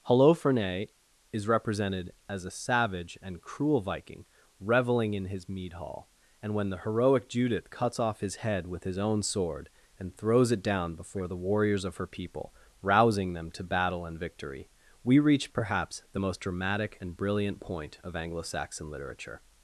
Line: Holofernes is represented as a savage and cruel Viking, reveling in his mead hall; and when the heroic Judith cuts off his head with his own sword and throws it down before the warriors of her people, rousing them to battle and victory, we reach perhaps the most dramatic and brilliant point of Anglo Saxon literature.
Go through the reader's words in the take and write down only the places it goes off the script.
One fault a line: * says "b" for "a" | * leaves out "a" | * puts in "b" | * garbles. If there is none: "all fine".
all fine